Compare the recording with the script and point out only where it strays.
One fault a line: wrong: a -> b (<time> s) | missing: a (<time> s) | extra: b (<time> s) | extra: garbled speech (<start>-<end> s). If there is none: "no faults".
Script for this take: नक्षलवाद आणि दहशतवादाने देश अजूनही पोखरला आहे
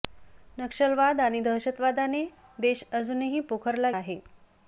no faults